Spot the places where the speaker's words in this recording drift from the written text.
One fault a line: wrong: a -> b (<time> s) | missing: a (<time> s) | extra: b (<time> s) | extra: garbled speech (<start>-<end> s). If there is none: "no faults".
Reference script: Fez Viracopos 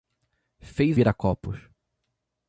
no faults